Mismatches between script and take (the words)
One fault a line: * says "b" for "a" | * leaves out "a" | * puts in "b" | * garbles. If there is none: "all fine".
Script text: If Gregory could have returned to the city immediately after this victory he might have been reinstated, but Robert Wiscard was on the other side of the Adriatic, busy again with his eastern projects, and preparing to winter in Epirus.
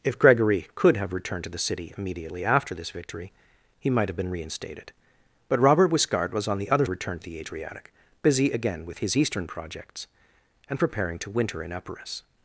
* says "returned" for "side"